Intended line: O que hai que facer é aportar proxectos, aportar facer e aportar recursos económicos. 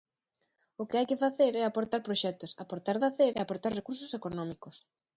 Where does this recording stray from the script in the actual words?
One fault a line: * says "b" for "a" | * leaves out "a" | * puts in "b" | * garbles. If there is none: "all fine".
all fine